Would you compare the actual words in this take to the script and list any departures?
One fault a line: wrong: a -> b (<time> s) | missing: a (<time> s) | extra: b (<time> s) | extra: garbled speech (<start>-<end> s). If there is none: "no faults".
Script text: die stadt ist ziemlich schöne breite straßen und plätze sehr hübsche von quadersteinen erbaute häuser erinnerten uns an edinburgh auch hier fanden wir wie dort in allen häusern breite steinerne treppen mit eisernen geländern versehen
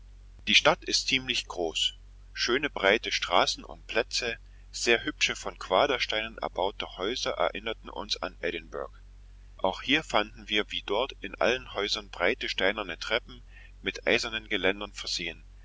extra: groß (1.4 s)